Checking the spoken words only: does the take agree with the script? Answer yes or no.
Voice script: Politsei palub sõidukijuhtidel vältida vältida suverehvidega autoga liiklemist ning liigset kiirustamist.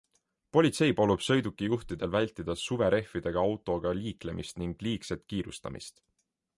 no